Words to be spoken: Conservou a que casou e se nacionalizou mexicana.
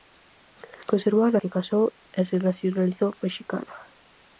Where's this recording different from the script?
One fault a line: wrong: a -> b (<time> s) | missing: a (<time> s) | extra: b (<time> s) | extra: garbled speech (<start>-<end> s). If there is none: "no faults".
no faults